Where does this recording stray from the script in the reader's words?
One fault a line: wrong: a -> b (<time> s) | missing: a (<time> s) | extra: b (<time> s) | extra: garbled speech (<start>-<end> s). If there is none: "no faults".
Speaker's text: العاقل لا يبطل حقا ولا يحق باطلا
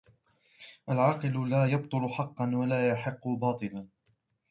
no faults